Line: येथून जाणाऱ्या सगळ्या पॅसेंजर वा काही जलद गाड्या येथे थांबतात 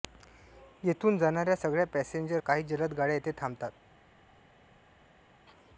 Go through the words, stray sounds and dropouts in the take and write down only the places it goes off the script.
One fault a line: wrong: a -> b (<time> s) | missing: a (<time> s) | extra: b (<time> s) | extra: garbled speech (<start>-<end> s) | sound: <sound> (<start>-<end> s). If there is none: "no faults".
missing: वा (2.4 s)